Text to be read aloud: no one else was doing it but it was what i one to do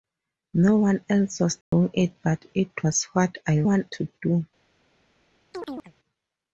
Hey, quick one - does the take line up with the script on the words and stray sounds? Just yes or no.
no